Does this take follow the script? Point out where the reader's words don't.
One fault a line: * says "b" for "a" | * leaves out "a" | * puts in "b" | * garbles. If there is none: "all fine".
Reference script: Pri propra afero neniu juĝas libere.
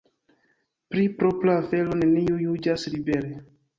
all fine